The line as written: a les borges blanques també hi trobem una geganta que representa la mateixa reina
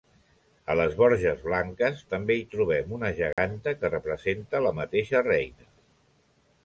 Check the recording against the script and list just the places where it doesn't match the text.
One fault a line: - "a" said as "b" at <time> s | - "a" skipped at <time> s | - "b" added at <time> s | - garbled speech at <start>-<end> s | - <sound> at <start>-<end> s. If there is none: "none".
- dropout at 3.3-3.4 s